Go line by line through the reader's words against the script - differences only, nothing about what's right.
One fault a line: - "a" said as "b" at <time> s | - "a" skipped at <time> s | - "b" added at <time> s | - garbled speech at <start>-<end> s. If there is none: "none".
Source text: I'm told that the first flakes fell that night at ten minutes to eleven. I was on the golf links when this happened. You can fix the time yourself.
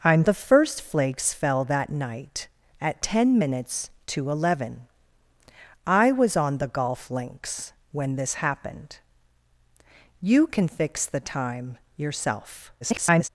- "told that" skipped at 0.2 s
- garbled speech at 12.8-13.3 s